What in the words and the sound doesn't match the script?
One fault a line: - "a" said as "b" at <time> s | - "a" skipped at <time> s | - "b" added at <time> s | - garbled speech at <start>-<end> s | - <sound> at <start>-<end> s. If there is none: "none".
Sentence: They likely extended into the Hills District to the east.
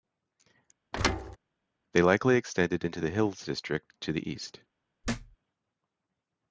- thud at 0.9-1.4 s
- thud at 5.0-5.4 s